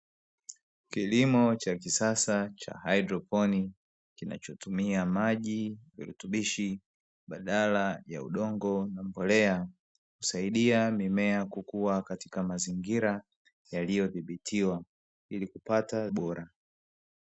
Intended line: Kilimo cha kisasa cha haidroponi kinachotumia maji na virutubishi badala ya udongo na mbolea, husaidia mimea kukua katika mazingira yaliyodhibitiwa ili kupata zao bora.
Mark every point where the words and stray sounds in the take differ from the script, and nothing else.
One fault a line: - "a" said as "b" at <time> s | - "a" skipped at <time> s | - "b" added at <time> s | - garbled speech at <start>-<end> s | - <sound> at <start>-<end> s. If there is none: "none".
- "na" skipped at 5.8 s
- "zao" skipped at 16.1 s